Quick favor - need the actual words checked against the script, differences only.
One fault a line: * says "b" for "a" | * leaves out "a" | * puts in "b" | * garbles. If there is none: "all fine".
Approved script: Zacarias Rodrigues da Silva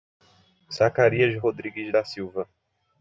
all fine